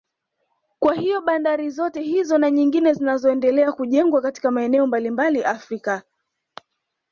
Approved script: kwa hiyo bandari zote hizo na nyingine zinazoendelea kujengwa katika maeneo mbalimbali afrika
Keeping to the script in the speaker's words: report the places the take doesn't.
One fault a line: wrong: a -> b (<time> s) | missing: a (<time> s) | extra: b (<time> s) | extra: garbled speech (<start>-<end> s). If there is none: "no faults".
no faults